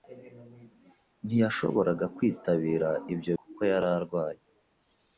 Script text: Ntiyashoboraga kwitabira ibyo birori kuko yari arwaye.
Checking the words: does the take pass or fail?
fail